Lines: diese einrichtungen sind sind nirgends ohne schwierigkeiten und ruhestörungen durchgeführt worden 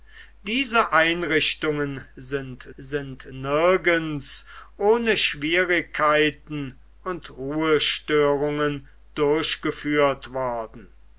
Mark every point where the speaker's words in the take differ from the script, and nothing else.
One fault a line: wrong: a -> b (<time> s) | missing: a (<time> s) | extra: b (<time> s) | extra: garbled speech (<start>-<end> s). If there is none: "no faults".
no faults